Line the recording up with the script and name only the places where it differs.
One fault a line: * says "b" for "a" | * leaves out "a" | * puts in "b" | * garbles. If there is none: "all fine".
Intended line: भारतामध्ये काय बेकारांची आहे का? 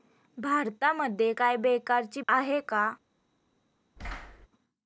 all fine